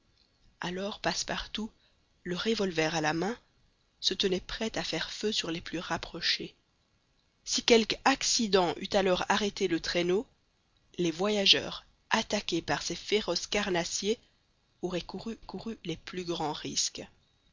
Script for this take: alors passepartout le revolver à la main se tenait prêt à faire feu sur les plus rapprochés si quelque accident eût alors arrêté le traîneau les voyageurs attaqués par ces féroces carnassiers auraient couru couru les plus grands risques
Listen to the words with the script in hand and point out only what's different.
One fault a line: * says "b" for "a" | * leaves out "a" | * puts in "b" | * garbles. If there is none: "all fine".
all fine